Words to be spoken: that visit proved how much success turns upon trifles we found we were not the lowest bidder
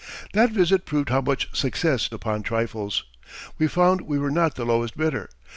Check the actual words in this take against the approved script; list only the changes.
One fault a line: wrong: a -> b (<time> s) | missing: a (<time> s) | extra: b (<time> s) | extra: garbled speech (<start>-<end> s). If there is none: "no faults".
missing: turns (2.1 s)